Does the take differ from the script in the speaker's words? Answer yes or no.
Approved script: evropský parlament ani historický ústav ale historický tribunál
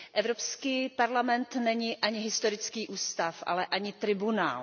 yes